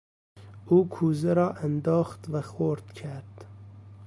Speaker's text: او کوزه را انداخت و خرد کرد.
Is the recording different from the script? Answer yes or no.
no